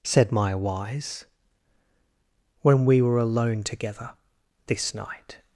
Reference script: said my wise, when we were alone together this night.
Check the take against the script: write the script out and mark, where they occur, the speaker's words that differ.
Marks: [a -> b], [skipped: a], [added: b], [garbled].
said my wise, when we were alone together this night.